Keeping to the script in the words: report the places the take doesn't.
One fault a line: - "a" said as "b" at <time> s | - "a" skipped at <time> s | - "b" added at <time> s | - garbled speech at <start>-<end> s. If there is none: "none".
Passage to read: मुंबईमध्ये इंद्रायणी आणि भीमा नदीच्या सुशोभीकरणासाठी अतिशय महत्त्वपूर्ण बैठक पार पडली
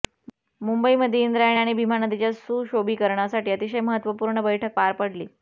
none